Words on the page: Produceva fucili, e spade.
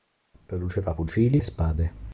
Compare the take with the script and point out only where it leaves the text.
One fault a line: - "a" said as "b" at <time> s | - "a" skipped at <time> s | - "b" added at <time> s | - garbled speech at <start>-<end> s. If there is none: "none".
none